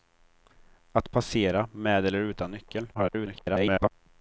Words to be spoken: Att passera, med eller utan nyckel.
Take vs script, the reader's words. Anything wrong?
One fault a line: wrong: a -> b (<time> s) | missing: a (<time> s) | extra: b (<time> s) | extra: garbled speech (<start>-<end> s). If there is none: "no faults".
extra: garbled speech (2.9-3.9 s)